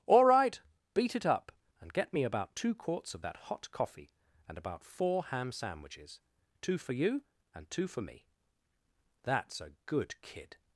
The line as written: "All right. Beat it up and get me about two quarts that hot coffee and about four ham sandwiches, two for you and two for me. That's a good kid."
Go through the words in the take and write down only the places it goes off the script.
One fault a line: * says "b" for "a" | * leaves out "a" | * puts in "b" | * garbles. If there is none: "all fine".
* puts in "of"